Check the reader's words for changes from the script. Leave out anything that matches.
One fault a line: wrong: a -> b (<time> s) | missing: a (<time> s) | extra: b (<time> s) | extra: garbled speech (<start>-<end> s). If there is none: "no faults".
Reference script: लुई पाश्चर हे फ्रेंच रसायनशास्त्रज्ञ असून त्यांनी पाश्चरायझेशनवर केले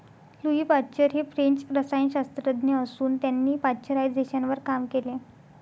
extra: काम (4.7 s)